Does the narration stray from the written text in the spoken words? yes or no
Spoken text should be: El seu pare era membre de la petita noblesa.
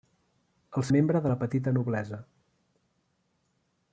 yes